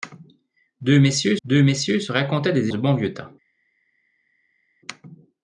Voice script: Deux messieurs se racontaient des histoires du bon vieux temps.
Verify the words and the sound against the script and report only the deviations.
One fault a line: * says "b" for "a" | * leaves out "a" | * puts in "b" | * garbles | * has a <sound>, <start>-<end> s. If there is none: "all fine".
* puts in "deux messieurs"
* leaves out "histoires"